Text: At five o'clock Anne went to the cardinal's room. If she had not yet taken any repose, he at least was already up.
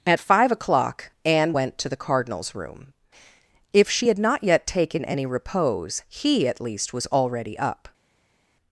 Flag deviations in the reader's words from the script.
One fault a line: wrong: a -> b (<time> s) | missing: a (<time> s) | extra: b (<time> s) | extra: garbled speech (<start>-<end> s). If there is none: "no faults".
no faults